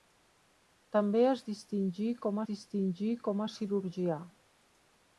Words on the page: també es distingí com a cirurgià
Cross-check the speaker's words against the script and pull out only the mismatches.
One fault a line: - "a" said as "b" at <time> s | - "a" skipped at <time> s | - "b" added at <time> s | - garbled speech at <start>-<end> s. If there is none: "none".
- "distingí com" added at 2.5 s